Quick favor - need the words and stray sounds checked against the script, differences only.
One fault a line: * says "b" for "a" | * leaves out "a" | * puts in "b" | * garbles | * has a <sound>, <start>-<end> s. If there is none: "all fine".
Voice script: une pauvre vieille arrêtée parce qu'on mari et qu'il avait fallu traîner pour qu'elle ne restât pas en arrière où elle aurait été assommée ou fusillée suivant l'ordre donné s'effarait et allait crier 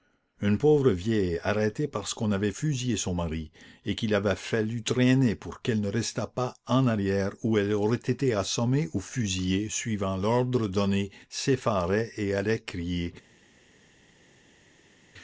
* puts in "avait fusillé son"